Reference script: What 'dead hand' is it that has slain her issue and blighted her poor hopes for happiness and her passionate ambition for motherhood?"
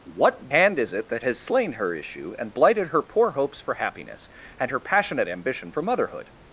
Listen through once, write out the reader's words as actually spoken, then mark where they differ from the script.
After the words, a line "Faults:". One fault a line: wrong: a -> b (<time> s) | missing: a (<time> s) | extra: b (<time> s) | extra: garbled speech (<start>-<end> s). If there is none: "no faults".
What 'hand' is it that has slain her issue and blighted her poor hopes for happiness and her passionate ambition for motherhood?"
Faults:
missing: dead (0.5 s)